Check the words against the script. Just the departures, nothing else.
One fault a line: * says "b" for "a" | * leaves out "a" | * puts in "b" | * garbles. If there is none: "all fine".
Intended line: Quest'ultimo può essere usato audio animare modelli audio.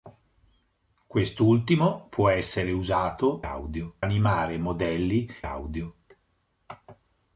all fine